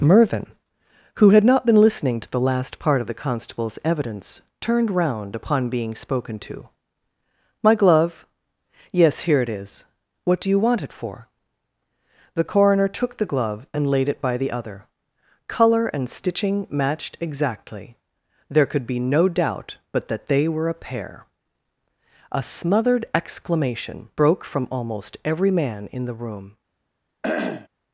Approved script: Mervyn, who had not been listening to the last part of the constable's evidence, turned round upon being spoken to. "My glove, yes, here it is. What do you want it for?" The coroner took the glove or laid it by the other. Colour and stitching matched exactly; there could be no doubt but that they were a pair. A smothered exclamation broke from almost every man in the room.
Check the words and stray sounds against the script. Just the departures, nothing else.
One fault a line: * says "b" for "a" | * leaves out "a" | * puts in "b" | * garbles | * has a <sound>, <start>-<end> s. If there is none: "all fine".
* says "and" for "or"
* has a throat clearing, 27.2-27.7 s